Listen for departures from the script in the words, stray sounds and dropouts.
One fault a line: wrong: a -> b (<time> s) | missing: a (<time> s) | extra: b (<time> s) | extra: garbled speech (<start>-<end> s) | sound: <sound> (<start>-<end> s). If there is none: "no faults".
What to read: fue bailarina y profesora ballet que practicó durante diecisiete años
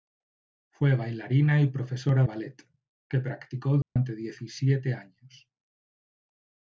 sound: dropout (3.8-4.0 s)